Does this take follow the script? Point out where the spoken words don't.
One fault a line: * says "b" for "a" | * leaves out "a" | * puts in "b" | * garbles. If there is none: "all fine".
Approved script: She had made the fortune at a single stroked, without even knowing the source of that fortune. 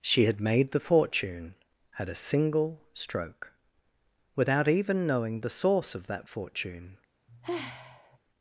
* says "stroke" for "stroked"